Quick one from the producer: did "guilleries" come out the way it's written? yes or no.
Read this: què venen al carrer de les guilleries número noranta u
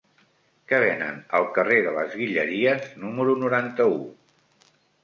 yes